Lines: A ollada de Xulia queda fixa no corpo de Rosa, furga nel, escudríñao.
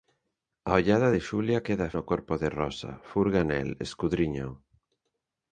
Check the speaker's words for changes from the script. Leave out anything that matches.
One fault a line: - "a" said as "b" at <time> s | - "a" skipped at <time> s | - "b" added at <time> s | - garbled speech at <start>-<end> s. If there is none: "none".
- "fixa" skipped at 1.9 s